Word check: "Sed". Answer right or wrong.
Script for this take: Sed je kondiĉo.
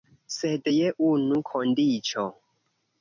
right